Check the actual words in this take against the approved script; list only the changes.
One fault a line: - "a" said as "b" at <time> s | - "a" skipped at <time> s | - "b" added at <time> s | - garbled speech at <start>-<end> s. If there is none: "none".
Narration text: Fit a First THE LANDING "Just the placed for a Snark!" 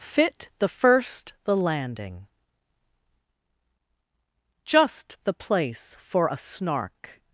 - "a" said as "the" at 0.6 s
- "placed" said as "place" at 5.3 s